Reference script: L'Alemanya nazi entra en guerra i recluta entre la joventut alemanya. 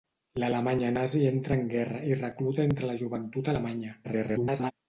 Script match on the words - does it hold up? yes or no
no